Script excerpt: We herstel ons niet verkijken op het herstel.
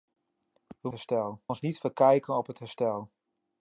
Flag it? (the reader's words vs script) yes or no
no